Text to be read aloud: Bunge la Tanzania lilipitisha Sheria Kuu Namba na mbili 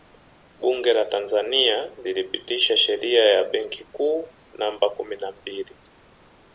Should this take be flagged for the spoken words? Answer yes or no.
yes